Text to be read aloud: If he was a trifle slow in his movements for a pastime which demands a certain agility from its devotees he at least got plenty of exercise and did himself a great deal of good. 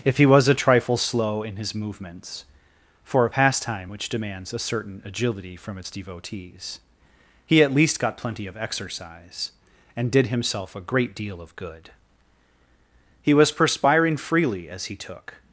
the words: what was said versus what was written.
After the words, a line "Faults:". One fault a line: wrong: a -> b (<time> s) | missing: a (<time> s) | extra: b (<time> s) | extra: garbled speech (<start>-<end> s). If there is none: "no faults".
If he was a trifle slow in his movements for a pastime which demands a certain agility from its devotees he at least got plenty of exercise and did himself a great deal of good. He was perspiring freely as he took
Faults:
extra: He was perspiring freely as he took (13.2 s)